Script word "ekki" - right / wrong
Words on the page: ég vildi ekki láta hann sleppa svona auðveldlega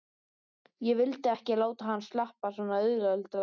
right